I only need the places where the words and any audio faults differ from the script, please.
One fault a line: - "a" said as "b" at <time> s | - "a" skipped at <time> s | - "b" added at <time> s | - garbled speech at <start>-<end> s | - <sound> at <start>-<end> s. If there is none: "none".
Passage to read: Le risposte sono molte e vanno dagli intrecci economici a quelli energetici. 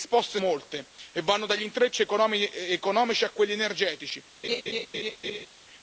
- "sono" skipped at 0.4 s
- laugh at 4.4-5.5 s